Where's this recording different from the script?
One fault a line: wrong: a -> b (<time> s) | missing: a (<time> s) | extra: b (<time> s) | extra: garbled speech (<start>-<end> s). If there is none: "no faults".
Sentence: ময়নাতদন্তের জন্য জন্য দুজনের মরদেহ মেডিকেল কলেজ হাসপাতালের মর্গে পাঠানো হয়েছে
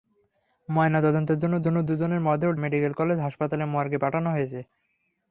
no faults